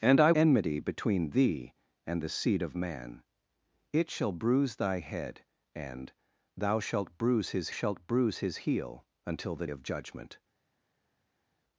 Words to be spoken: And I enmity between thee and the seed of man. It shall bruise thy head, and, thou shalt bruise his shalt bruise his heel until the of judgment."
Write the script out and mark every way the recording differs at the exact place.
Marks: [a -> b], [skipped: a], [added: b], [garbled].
And I enmity between thee and the seed of man. It shall bruise thy head, and, thou shalt bruise his shalt bruise his heel until the of judgment."